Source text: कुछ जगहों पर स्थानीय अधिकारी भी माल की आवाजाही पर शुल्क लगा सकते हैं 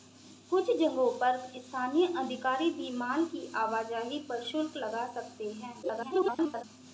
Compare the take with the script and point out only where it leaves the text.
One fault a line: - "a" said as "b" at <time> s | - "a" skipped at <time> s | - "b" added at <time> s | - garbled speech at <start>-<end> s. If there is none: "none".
- garbled speech at 5.8-6.6 s